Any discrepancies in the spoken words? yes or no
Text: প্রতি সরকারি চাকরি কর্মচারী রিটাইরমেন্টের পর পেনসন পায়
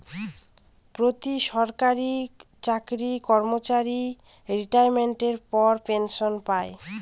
no